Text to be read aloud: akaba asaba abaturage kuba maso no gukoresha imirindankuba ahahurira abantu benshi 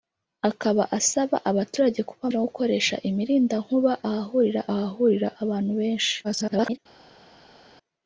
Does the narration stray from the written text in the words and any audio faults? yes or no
yes